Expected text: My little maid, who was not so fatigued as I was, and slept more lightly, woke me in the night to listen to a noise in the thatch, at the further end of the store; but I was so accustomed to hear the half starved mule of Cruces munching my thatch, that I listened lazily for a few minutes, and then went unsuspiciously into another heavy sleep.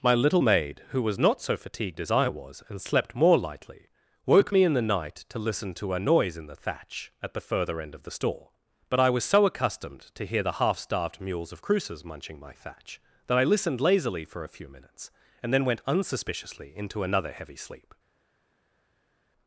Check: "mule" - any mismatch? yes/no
yes